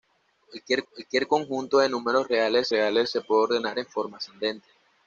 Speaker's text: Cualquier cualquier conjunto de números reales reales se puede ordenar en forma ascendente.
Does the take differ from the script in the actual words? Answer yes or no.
no